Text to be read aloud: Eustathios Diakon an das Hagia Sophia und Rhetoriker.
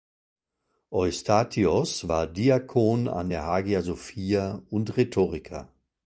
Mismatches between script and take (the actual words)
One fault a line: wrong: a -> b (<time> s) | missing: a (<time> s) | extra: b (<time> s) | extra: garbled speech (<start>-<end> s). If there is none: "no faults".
extra: war (2.1 s)
wrong: das -> der (3.3 s)